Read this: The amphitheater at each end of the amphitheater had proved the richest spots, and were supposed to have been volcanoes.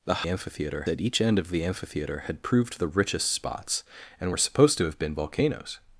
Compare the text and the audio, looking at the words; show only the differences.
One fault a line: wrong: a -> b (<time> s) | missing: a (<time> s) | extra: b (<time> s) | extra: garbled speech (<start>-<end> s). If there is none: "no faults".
no faults